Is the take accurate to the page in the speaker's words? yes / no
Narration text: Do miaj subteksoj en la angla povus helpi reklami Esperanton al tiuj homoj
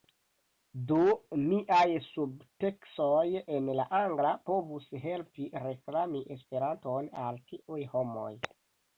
yes